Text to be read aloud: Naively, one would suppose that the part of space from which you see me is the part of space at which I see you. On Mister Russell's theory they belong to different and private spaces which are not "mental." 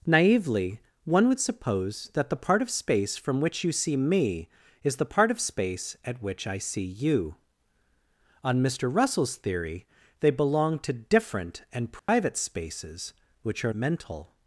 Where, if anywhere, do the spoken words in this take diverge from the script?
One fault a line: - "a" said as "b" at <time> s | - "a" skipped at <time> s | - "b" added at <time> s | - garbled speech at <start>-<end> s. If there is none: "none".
- "not" skipped at 13.7 s